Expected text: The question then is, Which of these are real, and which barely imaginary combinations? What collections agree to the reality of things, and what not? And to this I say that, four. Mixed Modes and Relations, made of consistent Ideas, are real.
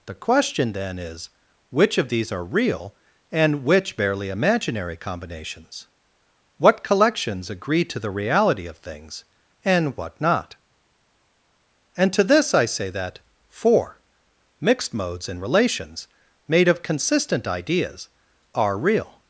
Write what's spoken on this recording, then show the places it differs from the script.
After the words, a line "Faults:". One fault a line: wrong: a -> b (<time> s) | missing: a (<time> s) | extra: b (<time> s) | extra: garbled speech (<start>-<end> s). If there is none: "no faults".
The question then is, Which of these are real, and which barely imaginary combinations? What collections agree to the reality of things, and what not? And to this I say that, four. Mixed Modes and Relations, made of consistent Ideas, are real.
Faults:
no faults